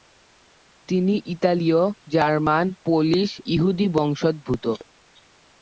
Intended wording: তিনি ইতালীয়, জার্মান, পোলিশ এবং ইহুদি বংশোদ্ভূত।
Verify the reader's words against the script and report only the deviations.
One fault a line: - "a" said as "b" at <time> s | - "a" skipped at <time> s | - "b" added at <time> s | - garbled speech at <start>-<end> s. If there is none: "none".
- "এবং" skipped at 3.3 s